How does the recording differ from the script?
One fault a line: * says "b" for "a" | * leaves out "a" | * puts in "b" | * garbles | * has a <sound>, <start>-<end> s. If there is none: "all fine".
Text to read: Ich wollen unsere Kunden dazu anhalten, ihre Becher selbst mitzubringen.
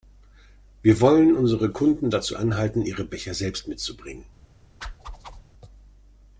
* says "Wir" for "Ich"
* has a whoosh, 4.8-5.4 s